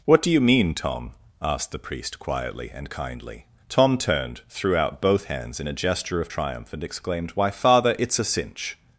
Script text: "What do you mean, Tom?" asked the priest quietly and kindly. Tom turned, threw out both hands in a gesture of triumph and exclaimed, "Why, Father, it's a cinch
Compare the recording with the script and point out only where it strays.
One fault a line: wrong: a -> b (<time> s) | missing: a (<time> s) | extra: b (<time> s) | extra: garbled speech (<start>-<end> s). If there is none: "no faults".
no faults